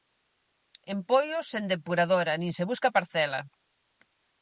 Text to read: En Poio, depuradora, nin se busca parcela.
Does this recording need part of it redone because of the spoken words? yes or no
yes